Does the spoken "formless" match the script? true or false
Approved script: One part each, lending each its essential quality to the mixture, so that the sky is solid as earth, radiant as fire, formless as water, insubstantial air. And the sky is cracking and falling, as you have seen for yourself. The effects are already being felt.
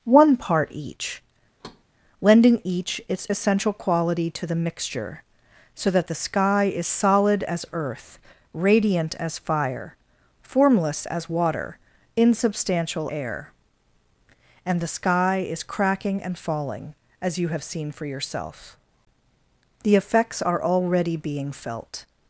true